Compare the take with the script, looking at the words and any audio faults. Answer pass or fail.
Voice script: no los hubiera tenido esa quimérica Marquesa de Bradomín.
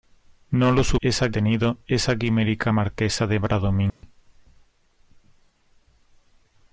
fail